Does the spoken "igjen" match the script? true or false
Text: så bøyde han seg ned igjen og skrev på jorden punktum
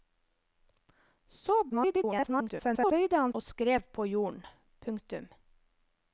false